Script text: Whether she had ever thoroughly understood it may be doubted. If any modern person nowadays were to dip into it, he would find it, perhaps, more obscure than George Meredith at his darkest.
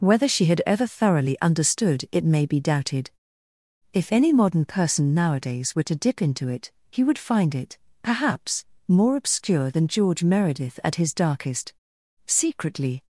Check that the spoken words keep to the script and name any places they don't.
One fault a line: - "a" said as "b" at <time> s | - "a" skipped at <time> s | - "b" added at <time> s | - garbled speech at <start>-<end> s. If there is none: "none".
- "Secretly" added at 12.2 s